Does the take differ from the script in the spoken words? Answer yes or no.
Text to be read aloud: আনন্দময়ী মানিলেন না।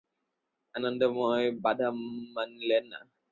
yes